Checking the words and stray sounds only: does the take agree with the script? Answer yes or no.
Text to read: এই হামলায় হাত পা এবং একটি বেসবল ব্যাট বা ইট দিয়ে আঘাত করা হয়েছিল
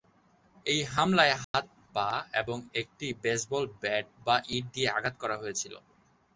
no